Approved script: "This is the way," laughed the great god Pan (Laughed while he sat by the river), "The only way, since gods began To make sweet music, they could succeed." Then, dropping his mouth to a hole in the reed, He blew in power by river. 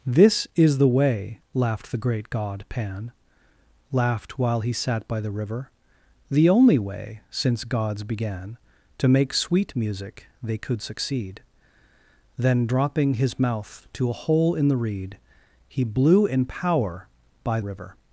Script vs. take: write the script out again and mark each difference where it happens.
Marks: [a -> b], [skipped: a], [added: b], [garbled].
"This is the way," laughed the great god Pan (Laughed while he sat by the river), "The only way, since gods began To make sweet music, they could succeed." Then, dropping his mouth to a hole in the reed, He blew in power by river.